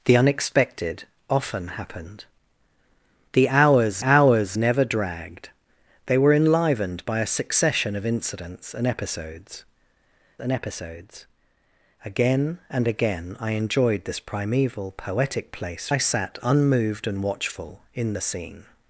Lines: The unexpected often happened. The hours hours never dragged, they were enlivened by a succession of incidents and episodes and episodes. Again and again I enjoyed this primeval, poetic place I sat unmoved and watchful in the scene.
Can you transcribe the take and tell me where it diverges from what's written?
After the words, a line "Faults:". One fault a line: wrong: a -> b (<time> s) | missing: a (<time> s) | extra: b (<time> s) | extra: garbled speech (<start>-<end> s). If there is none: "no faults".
The unexpected often happened. The hours hours never dragged, they were enlivened by a succession of incidents and episodes and episodes. Again and again I enjoyed this primeval, poetic place I sat unmoved and watchful in the scene.
Faults:
no faults